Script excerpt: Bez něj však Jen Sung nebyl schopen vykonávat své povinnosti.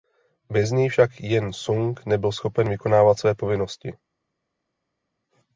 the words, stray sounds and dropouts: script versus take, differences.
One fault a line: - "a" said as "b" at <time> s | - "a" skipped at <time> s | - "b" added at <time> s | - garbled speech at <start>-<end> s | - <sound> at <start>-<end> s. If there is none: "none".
none